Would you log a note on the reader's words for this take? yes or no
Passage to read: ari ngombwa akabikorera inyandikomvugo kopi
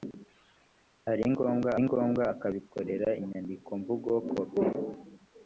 yes